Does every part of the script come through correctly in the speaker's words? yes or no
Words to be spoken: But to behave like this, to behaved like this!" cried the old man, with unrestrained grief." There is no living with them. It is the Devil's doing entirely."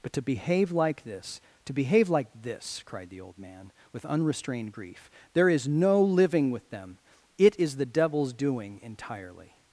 no